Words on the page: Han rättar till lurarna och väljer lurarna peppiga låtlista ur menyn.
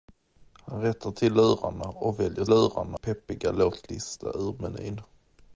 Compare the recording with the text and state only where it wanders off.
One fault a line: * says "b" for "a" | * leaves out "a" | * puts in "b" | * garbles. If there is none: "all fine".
all fine